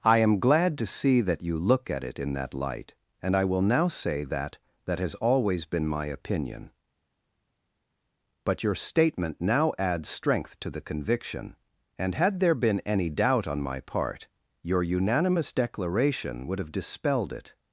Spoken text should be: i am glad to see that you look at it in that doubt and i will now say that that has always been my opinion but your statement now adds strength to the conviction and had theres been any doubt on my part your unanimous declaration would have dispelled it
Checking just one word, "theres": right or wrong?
wrong